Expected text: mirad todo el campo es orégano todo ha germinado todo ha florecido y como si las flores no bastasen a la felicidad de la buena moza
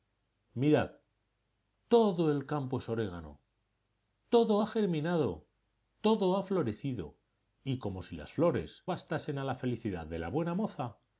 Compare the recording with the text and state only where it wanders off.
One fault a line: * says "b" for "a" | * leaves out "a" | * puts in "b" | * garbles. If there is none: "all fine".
* leaves out "no"